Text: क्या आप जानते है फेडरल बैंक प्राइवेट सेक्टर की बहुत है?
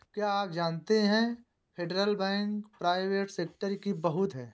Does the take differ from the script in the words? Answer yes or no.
no